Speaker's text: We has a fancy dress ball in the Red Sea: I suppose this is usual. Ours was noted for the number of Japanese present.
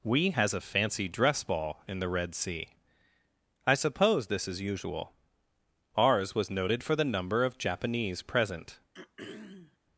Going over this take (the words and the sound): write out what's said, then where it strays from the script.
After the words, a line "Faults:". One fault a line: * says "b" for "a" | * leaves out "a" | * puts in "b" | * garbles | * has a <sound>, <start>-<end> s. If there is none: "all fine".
We has a fancy dress ball in the Red Sea: I suppose this is usual. Ours was noted for the number of Japanese present.
Faults:
* has a throat clearing, 8.9-9.8 s